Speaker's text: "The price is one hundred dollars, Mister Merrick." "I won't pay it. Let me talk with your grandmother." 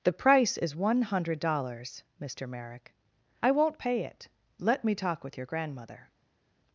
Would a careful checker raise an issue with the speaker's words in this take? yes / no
no